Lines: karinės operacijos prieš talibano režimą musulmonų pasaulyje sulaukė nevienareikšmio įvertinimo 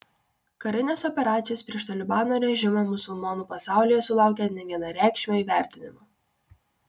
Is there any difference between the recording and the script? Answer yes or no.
no